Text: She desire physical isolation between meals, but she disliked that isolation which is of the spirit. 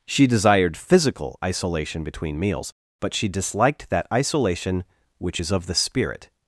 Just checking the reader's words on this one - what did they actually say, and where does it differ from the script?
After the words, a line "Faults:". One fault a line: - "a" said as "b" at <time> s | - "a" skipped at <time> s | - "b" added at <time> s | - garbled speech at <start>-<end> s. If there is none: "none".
She desired physical isolation between meals, but she disliked that isolation which is of the spirit.
Faults:
- "desire" said as "desired" at 0.3 s